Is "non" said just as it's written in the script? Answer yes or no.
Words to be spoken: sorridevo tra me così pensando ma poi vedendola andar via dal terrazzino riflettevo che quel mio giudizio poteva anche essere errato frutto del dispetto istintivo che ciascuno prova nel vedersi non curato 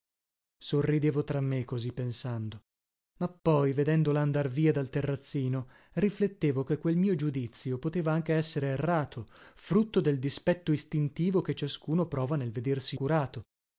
no